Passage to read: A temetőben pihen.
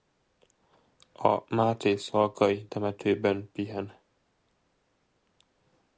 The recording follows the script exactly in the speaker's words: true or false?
false